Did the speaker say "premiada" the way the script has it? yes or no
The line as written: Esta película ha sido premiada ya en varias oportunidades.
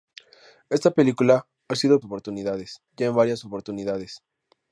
no